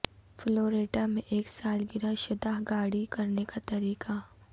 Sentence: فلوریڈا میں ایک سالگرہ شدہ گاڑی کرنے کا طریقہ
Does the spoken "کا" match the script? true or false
true